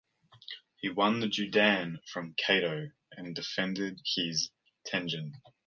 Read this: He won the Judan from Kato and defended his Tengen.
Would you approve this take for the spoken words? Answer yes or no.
yes